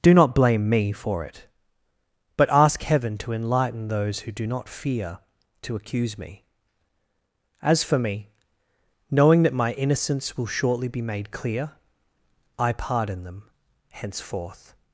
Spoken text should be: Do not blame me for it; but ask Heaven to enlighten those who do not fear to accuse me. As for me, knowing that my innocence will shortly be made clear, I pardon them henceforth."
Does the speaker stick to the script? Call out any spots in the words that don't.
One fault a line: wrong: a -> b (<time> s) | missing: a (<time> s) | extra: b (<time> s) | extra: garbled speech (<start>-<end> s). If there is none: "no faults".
no faults